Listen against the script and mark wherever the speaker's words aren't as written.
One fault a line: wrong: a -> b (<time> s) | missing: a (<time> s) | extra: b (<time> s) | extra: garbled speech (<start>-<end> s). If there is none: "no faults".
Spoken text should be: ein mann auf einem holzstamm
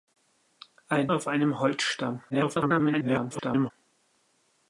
missing: mann (1.1 s)
extra: garbled speech (2.3-3.7 s)